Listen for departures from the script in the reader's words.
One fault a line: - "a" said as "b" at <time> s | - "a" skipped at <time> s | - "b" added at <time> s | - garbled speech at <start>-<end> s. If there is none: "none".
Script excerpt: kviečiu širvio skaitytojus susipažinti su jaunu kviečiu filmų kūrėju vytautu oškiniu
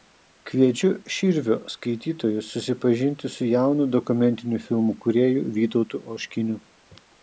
- "kviečiu" said as "dokumentinių" at 4.0 s